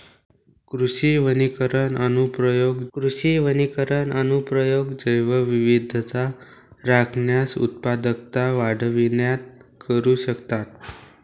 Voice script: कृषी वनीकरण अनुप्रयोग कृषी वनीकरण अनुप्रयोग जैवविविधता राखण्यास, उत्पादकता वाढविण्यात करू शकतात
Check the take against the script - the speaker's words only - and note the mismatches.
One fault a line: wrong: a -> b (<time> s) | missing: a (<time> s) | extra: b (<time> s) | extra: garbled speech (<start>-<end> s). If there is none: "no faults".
no faults